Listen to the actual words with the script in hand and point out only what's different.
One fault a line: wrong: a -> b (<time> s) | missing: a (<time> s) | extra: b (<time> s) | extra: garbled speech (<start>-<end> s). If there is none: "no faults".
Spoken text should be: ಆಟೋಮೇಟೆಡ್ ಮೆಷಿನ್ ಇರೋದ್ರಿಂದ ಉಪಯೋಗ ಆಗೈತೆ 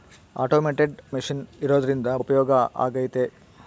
no faults